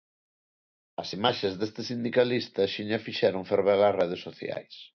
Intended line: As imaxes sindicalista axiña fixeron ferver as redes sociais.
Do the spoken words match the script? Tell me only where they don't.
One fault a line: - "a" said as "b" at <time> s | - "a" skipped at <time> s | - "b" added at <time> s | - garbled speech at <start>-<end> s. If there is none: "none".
- "deste" added at 1.6 s